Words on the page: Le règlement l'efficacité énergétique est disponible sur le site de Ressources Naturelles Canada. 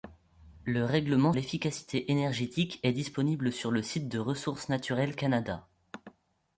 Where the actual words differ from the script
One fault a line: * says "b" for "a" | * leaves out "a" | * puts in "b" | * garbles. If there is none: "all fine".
all fine